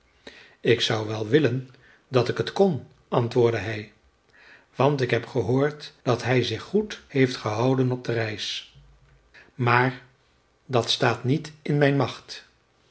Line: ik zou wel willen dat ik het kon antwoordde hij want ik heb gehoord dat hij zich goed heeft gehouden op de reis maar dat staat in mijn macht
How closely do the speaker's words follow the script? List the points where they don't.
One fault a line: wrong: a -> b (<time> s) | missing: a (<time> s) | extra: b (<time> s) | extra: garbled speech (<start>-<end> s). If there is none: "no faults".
extra: niet (11.2 s)